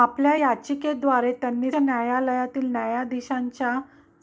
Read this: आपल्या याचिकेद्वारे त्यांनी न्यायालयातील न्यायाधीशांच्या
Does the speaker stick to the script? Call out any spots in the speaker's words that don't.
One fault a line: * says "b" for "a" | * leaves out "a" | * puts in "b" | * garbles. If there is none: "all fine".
all fine